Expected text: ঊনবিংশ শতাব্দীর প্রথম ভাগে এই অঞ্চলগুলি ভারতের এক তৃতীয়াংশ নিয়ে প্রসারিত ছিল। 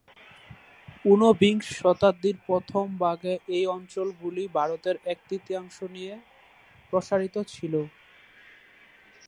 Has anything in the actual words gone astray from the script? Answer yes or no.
no